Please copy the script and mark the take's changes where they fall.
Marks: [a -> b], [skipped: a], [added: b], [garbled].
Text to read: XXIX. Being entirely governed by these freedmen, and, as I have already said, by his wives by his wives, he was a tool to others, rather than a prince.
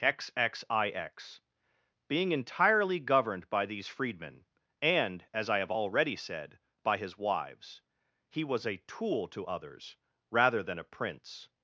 XXIX. Being entirely governed by these freedmen, and, as I have already said, by his wives [skipped: by his wives,] he was a tool to others, rather than a prince.